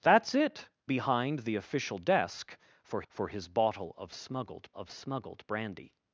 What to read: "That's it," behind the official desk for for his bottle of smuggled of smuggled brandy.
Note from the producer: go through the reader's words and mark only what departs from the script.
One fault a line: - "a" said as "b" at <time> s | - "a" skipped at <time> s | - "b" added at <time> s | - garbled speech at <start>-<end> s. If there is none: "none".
none